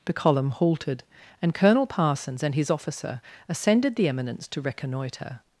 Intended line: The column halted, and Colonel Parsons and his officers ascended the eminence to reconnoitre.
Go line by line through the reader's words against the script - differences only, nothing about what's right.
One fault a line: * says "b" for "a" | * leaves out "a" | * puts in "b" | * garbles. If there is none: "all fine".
* says "officer" for "officers"